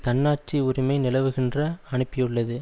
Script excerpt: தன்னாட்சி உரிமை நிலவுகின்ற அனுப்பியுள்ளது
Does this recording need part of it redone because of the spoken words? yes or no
no